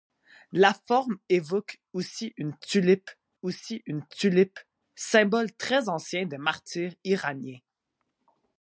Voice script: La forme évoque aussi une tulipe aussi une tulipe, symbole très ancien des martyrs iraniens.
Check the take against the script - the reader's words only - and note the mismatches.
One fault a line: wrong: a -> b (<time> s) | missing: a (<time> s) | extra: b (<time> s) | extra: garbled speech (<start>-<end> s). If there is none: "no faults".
no faults